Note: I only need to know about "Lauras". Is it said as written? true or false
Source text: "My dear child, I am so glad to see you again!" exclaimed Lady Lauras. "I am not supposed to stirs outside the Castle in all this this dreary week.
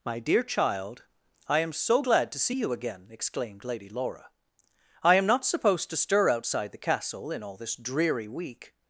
false